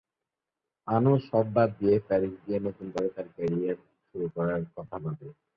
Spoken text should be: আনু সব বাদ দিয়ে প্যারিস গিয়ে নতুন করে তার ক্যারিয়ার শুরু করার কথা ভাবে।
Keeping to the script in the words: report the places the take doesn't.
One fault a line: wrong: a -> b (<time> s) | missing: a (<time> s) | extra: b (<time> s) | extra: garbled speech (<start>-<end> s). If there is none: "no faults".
no faults